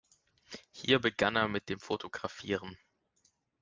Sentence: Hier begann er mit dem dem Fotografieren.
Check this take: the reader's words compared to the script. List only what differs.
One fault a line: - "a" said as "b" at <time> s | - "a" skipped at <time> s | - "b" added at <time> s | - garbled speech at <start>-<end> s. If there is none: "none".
- "dem" skipped at 1.8 s